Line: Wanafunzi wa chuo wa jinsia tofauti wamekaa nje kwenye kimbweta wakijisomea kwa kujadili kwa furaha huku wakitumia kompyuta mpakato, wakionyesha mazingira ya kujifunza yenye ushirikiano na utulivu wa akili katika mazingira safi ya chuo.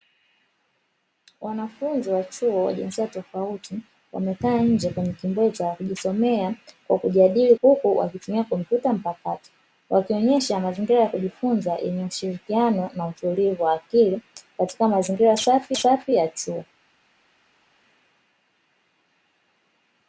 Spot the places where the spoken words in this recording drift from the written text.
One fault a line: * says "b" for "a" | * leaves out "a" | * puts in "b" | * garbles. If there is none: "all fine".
* leaves out "kwa furaha"
* puts in "safi"